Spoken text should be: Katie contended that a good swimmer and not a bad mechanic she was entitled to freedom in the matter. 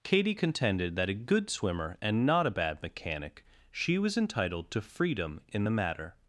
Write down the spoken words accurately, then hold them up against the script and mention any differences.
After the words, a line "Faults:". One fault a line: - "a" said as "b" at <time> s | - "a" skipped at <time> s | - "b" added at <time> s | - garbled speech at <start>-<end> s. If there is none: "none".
Katie contended that a good swimmer and not a bad mechanic she was entitled to freedom in the matter.
Faults:
none